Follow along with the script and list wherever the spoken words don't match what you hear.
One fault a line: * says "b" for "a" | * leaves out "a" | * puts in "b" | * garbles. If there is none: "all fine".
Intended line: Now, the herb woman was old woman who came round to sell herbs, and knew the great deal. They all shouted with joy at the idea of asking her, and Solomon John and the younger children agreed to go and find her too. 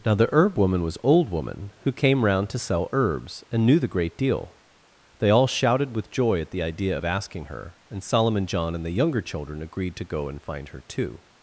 all fine